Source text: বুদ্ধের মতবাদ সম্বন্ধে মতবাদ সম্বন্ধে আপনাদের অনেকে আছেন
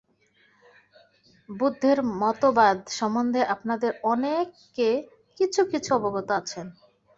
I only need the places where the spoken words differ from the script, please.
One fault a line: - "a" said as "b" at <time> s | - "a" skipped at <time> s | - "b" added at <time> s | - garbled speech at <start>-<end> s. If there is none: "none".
- "মতবাদ সম্বন্ধে আপনাদের অনেকে" said as "আপনাদের অনেকে কিছু কিছু অবগত" at 3.5 s